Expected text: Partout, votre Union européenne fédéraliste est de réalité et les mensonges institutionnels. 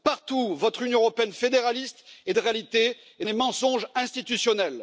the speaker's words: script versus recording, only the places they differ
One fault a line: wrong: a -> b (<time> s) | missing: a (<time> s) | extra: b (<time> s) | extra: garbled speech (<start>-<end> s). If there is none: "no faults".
no faults